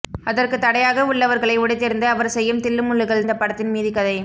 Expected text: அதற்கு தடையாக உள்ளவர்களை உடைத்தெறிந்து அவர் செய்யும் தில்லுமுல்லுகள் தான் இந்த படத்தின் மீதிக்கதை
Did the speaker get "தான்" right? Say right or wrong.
wrong